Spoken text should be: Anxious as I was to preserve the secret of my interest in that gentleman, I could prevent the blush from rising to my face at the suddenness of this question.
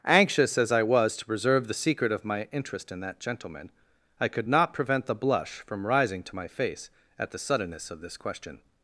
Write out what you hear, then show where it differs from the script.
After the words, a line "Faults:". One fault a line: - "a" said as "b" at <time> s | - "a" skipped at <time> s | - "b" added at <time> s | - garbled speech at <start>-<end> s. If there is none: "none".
Anxious as I was to preserve the secret of my interest in that gentleman, I could not prevent the blush from rising to my face at the suddenness of this question.
Faults:
- "not" added at 4.5 s